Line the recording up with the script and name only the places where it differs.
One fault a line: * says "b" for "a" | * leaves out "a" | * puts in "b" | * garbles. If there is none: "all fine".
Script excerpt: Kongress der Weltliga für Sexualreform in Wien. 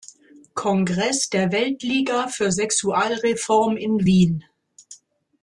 all fine